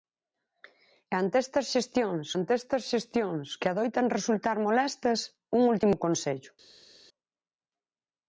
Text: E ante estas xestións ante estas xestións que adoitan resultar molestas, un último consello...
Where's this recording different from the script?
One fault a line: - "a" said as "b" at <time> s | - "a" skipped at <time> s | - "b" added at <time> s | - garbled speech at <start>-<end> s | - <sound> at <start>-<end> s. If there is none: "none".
none